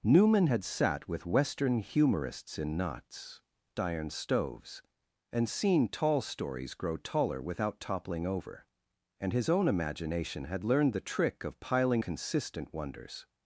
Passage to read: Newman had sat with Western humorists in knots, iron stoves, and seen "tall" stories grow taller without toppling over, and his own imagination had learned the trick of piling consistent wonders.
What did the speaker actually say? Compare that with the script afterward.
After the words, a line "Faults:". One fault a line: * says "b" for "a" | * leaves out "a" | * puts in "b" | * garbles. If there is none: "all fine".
Newman had sat with Western humorists in knots, iron stoves, and seen "tall" stories grow taller without toppling over, and his own imagination had learned the trick of piling consistent wonders.
Faults:
all fine